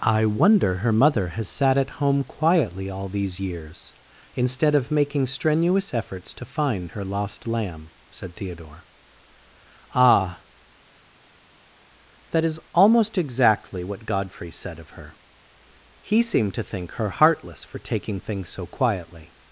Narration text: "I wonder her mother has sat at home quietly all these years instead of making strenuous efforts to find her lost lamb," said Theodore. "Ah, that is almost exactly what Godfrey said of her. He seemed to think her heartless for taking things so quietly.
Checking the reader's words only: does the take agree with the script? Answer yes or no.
yes